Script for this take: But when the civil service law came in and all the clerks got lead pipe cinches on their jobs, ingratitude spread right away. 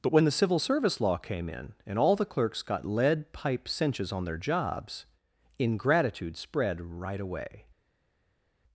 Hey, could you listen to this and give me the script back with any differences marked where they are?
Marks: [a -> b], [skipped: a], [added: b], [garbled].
But when the civil service law came in and all the clerks got lead pipe cinches on their jobs, ingratitude spread right away.